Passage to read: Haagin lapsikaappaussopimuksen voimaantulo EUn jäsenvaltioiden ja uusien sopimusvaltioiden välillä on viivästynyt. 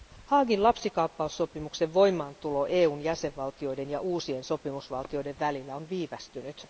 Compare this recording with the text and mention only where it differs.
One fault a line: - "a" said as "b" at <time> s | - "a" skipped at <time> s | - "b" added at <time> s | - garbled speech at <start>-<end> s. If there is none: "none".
none